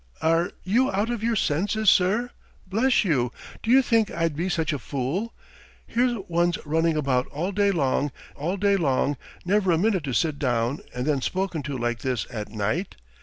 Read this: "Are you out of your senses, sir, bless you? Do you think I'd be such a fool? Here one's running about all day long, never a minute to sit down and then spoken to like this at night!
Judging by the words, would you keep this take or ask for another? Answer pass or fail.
fail